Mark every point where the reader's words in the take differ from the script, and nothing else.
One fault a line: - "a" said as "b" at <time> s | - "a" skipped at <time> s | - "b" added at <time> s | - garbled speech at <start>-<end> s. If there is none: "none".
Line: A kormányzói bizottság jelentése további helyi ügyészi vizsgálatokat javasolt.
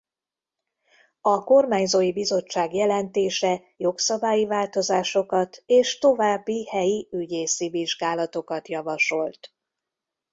- "jogszabályi változásokat és" added at 3.8 s